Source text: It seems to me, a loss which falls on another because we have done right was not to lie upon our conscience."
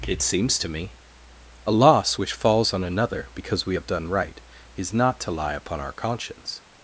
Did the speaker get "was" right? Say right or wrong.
wrong